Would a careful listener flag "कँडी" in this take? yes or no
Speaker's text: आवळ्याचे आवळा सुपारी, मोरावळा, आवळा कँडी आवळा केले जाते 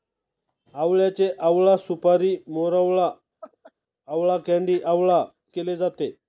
no